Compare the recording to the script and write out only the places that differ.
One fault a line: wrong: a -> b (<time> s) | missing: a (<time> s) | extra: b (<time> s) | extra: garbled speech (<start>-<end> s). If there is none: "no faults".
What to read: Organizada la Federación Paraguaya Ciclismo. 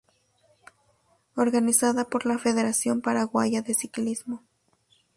extra: por (2.0 s)
extra: de (3.6 s)